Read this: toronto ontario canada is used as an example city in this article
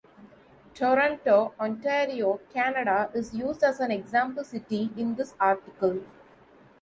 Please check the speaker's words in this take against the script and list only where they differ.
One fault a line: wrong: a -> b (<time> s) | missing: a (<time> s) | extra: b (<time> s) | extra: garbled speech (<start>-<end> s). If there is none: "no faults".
no faults